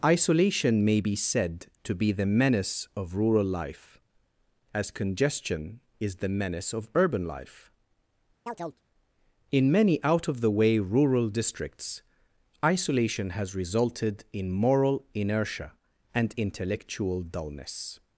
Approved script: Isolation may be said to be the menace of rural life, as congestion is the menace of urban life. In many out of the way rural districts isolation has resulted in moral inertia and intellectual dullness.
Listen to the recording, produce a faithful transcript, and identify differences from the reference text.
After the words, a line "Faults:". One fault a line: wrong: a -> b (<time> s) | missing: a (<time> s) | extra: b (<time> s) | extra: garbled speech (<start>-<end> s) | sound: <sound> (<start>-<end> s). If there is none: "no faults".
Isolation may be said to be the menace of rural life, as congestion is the menace of urban life. In many out of the way rural districts isolation has resulted in moral inertia and intellectual dullness.
Faults:
sound: chirp (8.5-8.8 s)